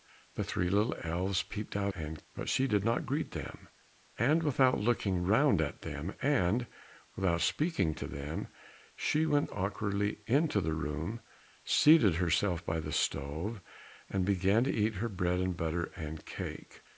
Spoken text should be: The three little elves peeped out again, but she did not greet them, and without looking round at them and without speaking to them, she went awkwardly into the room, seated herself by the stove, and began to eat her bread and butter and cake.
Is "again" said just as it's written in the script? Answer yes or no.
no